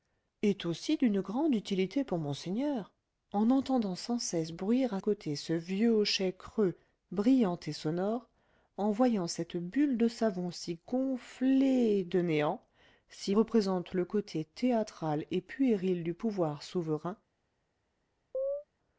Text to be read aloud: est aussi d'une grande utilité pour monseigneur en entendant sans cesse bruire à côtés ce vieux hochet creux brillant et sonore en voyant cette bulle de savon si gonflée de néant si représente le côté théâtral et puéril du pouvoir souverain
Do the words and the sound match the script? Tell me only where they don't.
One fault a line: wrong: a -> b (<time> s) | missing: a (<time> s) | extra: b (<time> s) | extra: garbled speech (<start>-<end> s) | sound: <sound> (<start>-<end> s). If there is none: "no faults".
sound: chirp (18.3-18.6 s)